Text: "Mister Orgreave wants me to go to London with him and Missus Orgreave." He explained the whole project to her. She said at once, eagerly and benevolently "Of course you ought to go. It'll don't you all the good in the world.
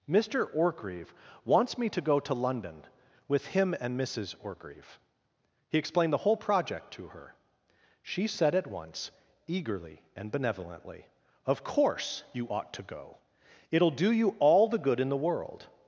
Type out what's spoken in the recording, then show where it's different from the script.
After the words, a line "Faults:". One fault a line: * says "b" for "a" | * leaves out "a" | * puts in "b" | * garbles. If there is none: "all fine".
"Mister Orgreave wants me to go to London with him and Missus Orgreave." He explained the whole project to her. She said at once, eagerly and benevolently "Of course you ought to go. It'll do you all the good in the world.
Faults:
* says "do" for "don't"